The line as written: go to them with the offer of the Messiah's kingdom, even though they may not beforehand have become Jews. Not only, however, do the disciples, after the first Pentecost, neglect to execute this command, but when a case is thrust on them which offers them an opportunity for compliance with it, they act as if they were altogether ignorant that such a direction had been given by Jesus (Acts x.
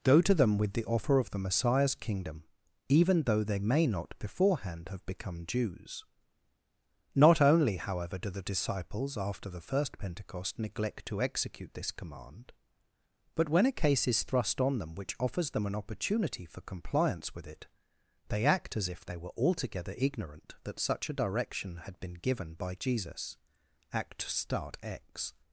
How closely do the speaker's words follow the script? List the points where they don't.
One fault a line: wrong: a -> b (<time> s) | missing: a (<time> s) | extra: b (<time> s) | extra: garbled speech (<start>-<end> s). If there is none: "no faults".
wrong: Acts -> Act start (23.9 s)